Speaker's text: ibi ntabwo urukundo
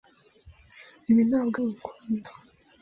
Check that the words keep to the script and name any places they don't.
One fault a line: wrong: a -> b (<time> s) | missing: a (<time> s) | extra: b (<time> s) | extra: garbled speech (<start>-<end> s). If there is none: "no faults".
no faults